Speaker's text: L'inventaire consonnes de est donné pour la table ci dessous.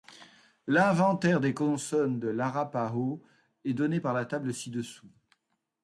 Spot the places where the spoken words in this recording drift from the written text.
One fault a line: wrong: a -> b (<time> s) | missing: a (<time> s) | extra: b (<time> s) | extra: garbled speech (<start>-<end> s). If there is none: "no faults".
extra: des (1.4 s)
extra: l'arapaho (2.3 s)
wrong: pour -> par (4.0 s)